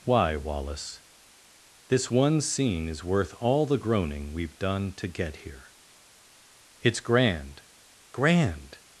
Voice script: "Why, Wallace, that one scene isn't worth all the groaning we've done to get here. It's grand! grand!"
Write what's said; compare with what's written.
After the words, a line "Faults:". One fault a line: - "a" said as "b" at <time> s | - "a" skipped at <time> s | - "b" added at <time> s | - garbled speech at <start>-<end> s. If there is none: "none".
"Why, Wallace, this one scene is worth all the groaning we've done to get here. It's grand! grand!"
Faults:
- "that" said as "this" at 1.9 s
- "isn't" said as "is" at 2.9 s